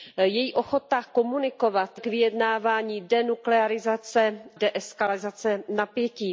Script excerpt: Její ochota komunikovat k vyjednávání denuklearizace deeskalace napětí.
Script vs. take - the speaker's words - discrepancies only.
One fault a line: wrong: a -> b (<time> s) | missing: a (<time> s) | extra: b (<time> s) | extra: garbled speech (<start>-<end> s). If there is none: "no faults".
no faults